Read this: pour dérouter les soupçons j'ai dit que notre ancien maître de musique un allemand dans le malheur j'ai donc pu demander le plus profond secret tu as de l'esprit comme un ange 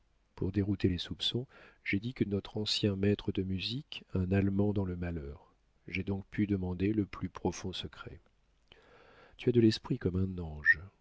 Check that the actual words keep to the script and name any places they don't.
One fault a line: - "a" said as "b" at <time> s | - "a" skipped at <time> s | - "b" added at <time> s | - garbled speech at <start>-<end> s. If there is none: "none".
none